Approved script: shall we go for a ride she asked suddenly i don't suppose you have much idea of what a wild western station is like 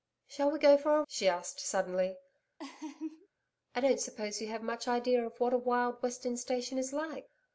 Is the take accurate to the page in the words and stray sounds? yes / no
no